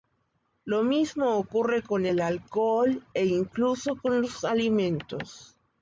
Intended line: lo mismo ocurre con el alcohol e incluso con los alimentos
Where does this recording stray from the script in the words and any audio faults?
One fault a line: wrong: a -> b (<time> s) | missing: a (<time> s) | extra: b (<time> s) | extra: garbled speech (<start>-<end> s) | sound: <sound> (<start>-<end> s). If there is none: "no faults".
no faults